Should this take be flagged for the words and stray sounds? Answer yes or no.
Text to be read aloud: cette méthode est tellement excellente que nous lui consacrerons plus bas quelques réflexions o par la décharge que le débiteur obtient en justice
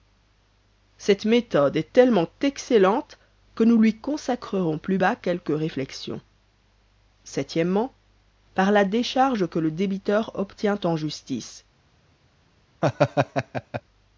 yes